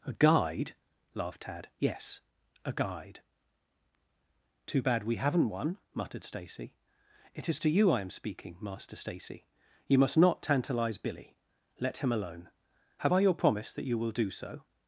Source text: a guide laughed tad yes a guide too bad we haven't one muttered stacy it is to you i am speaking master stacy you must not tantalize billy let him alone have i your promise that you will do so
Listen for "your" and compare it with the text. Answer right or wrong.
right